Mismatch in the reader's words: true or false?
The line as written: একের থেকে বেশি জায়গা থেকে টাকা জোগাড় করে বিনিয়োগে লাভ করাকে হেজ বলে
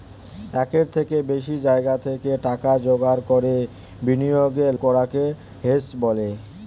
true